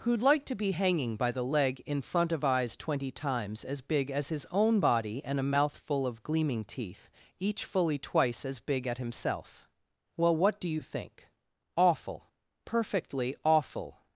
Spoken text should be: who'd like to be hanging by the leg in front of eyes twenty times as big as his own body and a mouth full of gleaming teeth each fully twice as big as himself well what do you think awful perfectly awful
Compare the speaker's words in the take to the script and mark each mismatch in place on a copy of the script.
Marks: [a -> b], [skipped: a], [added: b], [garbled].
who'd like to be hanging by the leg in front of eyes twenty times as big as his own body and a mouth full of gleaming teeth each fully twice as big [as -> at] himself well what do you think awful perfectly awful